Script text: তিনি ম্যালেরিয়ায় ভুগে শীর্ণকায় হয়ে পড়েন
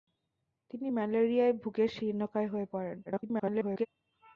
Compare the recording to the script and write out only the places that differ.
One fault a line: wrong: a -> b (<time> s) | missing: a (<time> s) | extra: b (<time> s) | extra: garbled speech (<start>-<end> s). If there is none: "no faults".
extra: garbled speech (3.1-3.9 s)